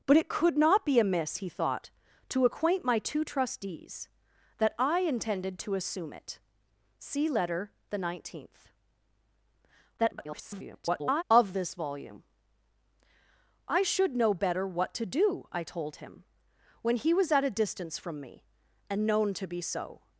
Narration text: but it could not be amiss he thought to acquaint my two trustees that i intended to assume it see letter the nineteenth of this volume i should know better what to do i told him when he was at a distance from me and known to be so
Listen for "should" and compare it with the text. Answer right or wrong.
right